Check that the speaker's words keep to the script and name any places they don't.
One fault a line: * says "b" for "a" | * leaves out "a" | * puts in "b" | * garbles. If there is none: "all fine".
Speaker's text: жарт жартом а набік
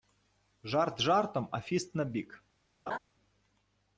* puts in "фіст"